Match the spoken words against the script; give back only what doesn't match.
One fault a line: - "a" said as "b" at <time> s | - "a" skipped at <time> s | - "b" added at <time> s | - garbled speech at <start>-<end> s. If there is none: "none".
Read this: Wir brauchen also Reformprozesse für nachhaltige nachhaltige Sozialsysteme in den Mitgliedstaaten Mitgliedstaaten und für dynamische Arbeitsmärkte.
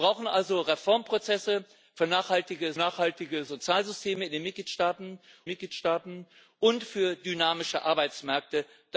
none